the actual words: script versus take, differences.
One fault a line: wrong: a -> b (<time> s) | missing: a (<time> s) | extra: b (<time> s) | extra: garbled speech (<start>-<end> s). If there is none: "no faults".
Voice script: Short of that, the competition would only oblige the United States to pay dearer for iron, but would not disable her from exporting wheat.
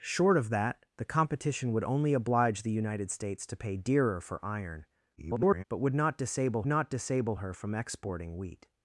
extra: garbled speech (5.2-5.6 s)
extra: not disable (6.6 s)